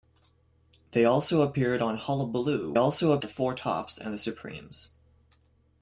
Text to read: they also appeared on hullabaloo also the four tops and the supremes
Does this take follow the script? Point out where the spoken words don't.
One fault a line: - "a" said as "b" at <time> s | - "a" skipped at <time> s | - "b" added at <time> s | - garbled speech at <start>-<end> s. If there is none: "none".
none